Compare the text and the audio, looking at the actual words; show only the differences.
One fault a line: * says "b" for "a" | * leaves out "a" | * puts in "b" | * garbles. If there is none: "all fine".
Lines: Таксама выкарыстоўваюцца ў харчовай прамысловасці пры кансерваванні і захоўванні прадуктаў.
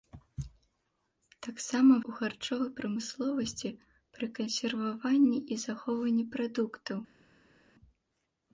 * leaves out "выкарыстоўваюцца"